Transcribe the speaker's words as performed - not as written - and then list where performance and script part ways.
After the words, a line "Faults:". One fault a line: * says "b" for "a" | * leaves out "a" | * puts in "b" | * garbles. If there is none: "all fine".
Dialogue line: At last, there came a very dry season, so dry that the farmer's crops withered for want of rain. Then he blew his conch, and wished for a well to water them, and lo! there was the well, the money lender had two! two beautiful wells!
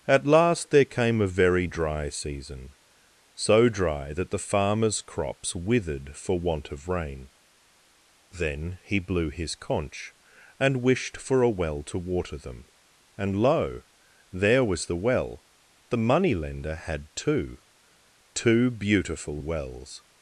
At last, there came a very dry season, so dry that the farmer's crops withered for want of rain. Then he blew his conch, and wished for a well to water them, and lo! there was the well, the money lender had two! two beautiful wells!
Faults:
all fine